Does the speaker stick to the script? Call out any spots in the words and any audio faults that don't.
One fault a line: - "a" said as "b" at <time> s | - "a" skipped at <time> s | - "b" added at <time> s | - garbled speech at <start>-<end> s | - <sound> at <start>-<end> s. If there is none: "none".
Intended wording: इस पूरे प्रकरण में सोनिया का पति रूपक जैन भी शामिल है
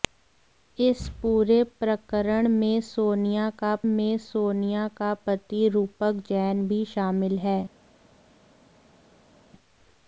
- "में सोनिया का" added at 3.9 s